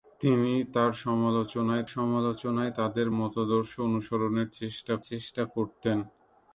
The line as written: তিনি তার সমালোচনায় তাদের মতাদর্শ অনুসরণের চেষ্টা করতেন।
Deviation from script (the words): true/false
true